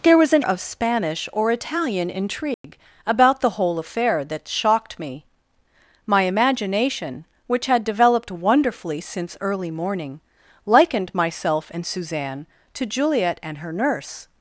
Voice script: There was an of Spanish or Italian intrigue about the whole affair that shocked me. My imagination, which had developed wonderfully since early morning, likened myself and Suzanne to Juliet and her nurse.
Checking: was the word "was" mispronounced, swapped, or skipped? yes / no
no